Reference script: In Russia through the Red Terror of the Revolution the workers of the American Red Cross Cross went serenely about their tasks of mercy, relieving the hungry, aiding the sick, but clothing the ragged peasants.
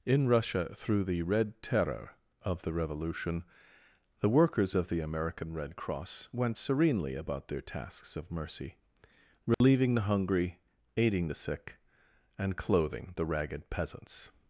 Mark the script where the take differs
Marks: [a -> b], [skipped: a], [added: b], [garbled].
In Russia through the Red Terror of the Revolution the workers of the American Red Cross [skipped: Cross] went serenely about their tasks of mercy, relieving the hungry, aiding the sick, [but -> and] clothing the ragged peasants.